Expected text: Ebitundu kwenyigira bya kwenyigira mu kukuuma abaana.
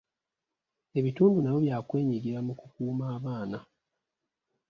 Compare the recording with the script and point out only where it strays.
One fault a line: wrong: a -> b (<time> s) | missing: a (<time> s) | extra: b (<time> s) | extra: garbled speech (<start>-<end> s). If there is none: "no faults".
wrong: kwenyigira -> nabyo (1.4 s)